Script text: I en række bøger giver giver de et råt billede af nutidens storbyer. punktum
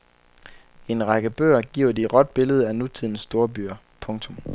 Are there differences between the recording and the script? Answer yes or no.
yes